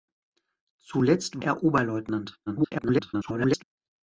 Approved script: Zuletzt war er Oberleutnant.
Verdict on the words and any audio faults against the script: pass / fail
fail